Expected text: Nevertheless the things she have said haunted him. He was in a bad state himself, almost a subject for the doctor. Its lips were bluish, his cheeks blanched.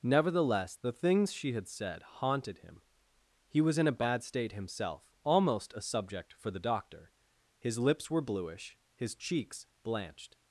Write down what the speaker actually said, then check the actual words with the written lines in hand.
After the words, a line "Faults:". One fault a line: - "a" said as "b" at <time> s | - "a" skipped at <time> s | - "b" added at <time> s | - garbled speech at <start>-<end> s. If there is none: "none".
Nevertheless the things she had said haunted him. He was in a bad state himself, almost a subject for the doctor. His lips were bluish, his cheeks blanched.
Faults:
- "have" said as "had" at 1.5 s
- "Its" said as "His" at 7.6 s